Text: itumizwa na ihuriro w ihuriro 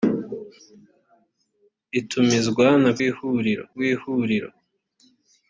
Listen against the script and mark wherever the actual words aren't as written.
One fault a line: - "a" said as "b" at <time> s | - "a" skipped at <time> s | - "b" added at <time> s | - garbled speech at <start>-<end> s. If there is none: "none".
none